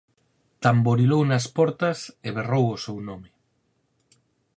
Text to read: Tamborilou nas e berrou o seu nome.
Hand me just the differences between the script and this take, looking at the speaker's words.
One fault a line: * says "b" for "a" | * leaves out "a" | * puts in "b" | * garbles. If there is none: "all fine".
* puts in "portas"